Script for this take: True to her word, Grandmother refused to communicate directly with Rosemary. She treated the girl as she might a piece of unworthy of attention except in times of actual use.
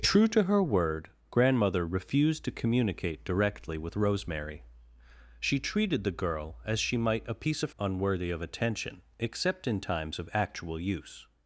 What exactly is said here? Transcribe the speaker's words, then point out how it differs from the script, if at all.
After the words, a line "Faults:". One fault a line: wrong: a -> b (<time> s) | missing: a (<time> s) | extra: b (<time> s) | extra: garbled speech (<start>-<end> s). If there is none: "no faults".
True to her word, Grandmother refused to communicate directly with Rosemary. She treated the girl as she might a piece of unworthy of attention except in times of actual use.
Faults:
no faults